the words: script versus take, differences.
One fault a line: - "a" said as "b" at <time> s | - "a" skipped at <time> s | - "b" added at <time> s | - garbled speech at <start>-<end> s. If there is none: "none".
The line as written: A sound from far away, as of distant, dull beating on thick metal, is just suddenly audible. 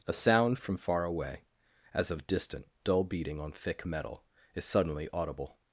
- "just" skipped at 4.6 s